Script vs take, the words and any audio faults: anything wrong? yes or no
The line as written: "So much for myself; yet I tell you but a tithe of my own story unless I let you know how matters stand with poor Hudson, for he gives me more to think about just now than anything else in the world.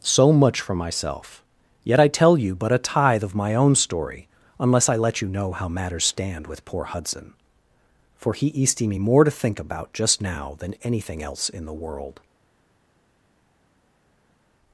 yes